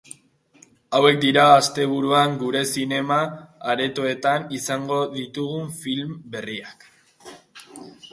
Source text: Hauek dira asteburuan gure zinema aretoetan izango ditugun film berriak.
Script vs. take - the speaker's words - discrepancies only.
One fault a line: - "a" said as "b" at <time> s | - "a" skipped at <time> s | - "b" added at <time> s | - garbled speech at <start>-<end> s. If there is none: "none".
none